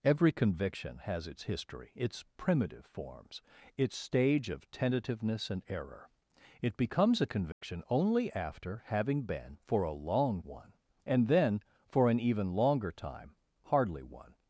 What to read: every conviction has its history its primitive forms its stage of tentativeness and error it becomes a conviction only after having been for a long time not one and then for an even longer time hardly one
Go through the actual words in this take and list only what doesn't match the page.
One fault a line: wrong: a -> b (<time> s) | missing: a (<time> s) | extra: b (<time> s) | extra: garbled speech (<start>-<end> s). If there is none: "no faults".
missing: time not (10.4 s)